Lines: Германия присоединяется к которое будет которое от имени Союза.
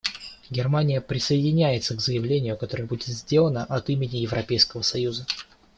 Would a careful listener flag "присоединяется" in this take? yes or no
no